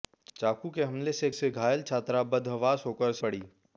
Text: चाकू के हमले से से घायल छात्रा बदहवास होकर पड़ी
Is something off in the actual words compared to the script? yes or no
no